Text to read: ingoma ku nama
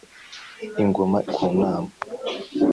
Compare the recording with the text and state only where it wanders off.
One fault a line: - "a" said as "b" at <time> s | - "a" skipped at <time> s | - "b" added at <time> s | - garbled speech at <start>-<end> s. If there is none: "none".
none